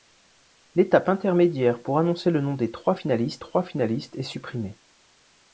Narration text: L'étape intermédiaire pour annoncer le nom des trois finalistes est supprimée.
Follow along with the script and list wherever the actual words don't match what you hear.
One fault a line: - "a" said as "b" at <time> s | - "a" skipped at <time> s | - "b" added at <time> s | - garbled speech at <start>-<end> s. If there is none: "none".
- "trois finalistes" added at 3.4 s